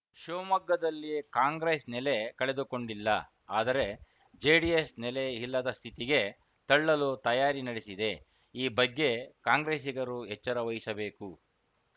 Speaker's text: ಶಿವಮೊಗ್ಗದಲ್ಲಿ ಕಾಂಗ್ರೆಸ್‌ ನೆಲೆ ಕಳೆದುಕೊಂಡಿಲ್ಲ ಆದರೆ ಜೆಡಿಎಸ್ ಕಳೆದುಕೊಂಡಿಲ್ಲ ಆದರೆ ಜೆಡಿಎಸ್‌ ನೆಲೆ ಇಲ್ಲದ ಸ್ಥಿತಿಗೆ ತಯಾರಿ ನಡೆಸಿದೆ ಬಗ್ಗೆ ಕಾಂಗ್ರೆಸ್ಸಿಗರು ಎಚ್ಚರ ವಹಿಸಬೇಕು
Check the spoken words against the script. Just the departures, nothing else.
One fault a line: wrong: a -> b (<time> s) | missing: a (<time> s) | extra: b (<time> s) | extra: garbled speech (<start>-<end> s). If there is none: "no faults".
missing: ಕಳೆದುಕೊಂಡಿಲ್ಲ ಆದರೆ ಜೆಡಿಎಸ್ (4.9 s)
extra: ತಳ್ಳಲು (6.7 s)
extra: ಈ (8.5 s)